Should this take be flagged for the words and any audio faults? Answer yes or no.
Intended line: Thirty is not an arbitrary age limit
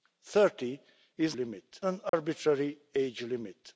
yes